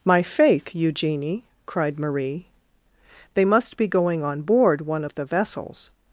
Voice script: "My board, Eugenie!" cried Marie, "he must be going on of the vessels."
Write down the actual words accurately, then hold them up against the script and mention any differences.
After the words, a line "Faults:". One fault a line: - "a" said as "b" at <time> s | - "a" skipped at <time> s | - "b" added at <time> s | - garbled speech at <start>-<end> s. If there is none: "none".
"My faith, Eugenie!" cried Marie, "they must be going on board one of the vessels."
Faults:
- "board" said as "faith" at 0.2 s
- "he" said as "they" at 3.4 s
- "board one" added at 4.4 s